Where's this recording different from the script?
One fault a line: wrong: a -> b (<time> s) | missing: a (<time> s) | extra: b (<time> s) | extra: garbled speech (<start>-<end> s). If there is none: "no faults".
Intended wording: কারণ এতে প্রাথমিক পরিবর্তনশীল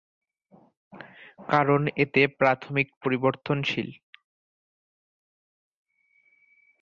no faults